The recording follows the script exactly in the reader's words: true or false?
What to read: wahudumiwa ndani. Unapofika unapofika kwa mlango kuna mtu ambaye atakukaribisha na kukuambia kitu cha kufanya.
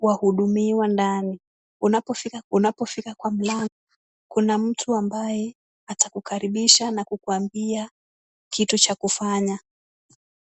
true